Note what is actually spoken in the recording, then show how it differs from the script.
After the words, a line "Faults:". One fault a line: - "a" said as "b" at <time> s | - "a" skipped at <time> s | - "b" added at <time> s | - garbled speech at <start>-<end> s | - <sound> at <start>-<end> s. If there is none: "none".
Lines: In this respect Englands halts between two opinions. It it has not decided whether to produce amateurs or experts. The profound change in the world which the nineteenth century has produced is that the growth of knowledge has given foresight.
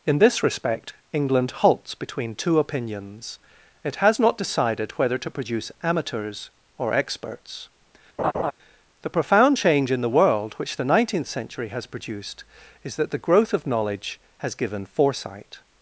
In this respect England halts between two opinions. It has not decided whether to produce amateurs or experts. The profound change in the world which the nineteenth century has produced is that the growth of knowledge has given foresight.
Faults:
- "Englands" said as "England" at 1.1 s
- "it" skipped at 4.0 s
- laugh at 8.2-8.5 s